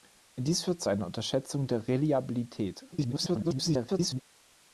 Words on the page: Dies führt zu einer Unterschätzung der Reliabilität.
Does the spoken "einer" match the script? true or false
true